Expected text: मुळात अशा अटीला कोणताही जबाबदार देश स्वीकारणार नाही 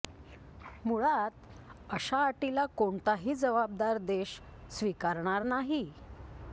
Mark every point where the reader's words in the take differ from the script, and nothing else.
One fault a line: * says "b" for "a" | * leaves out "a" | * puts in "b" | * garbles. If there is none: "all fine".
all fine